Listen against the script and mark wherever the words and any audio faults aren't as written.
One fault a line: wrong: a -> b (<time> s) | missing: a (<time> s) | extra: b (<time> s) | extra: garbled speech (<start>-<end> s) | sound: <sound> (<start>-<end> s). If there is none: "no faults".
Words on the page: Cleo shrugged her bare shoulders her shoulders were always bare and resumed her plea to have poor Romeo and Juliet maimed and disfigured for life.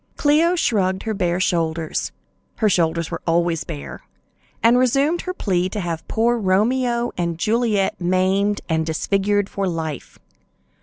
no faults